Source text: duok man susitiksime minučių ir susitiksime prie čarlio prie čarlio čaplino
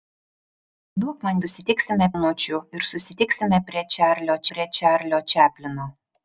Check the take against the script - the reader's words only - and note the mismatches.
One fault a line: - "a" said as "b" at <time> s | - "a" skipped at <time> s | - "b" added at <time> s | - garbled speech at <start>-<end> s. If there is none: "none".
none